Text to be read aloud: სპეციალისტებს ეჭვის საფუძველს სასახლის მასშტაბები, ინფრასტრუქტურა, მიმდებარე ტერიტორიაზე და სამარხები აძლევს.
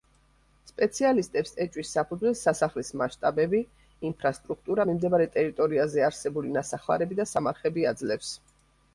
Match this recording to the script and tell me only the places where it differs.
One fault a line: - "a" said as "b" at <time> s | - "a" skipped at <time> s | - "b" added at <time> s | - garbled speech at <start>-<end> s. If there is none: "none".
- "არსებული ნასახლარები" added at 6.1 s